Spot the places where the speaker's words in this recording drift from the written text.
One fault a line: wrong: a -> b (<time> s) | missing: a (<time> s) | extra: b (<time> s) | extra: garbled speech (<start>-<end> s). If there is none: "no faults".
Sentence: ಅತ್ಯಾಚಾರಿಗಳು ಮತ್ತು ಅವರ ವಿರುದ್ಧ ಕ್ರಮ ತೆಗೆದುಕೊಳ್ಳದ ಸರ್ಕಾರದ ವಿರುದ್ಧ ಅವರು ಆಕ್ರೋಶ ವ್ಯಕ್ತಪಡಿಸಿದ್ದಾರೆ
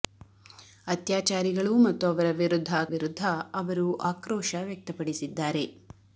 missing: ಕ್ರಮ ತೆಗೆದುಕೊಳ್ಳದ ಸರ್ಕಾರದ (2.7 s)